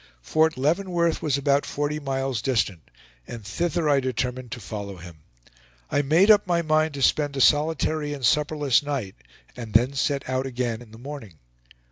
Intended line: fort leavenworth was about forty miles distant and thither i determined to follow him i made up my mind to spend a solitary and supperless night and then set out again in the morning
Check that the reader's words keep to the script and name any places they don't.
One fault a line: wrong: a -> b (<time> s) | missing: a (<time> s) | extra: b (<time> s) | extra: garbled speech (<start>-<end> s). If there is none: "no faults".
no faults